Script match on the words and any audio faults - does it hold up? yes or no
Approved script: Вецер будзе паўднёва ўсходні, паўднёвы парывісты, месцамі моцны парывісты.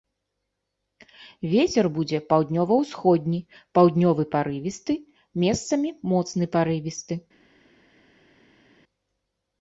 yes